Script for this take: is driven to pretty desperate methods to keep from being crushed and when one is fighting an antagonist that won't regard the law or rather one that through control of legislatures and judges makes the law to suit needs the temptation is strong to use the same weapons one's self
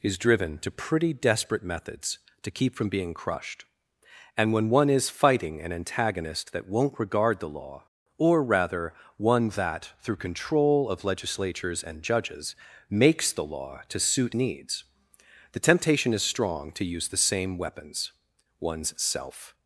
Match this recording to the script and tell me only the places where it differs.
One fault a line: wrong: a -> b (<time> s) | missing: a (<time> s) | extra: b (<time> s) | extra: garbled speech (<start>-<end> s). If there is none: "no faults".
no faults